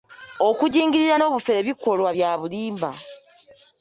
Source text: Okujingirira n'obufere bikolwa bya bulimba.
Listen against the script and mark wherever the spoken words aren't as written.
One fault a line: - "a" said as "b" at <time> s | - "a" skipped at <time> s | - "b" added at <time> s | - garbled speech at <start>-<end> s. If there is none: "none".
none